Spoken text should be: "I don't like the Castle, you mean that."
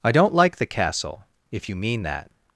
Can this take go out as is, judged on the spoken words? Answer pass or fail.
fail